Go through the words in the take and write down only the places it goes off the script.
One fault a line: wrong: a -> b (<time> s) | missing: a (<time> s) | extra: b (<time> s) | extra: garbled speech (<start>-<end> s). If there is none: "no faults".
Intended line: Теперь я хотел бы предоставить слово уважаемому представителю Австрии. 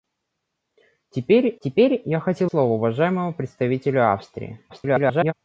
extra: теперь (1.6 s)
missing: бы предоставить (2.5 s)
extra: garbled speech (4.7-5.3 s)